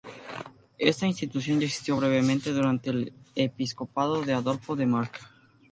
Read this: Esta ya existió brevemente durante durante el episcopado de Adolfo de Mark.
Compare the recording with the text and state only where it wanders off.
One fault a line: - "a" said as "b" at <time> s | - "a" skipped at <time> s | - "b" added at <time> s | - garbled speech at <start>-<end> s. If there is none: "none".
- "institución" added at 1.1 s
- "durante" skipped at 2.9 s